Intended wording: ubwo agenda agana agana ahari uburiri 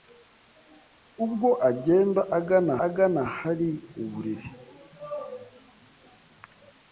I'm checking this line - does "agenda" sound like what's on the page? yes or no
yes